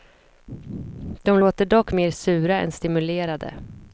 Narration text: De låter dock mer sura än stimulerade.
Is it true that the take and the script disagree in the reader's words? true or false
false